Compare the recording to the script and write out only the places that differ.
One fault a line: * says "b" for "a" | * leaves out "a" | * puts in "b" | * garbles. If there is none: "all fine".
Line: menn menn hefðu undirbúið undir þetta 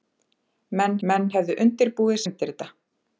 all fine